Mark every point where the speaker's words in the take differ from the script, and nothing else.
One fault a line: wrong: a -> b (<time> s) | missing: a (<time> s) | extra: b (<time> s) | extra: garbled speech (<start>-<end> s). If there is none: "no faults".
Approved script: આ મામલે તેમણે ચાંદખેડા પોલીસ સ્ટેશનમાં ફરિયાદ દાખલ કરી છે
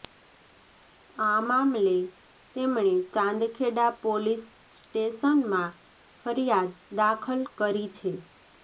no faults